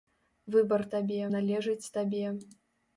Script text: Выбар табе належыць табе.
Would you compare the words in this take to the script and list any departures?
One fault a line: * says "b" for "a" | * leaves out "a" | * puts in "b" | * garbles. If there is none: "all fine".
all fine